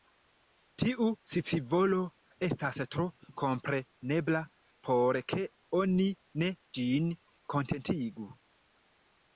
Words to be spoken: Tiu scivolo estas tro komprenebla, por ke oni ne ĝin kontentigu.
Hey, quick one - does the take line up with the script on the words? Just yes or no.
yes